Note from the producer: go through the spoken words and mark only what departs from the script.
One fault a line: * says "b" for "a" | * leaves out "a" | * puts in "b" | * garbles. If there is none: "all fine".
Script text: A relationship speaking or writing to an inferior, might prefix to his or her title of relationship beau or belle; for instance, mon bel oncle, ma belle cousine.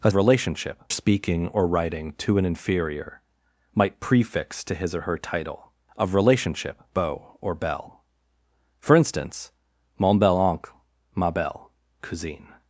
all fine